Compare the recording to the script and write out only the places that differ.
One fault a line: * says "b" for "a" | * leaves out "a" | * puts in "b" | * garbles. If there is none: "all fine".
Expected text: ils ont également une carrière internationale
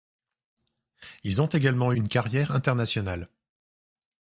all fine